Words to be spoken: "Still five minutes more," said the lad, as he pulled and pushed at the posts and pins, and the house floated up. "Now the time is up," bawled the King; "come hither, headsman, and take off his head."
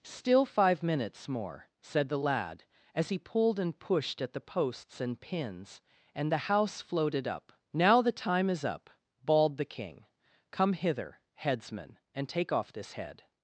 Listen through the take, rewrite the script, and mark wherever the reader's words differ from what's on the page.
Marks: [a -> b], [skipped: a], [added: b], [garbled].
"Still five minutes more," said the lad, as he pulled and pushed at the posts and pins, and the house floated up. "Now the time is up," bawled the King; "come hither, headsman, and take off [his -> this] head."